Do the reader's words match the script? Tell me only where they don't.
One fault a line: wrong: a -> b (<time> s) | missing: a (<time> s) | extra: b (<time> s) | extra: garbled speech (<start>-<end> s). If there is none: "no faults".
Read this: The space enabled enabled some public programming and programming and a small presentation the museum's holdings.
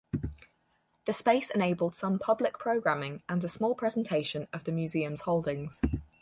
missing: enabled (1.9 s)
missing: programming and (3.4 s)
extra: of (4.5 s)